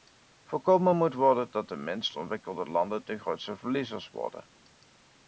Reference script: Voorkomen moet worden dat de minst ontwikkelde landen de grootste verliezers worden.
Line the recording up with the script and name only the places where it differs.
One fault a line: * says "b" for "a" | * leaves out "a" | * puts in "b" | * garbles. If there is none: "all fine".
all fine